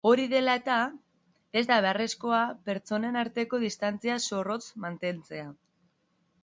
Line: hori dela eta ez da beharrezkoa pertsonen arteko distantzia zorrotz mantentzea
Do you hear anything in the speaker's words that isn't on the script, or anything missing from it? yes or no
no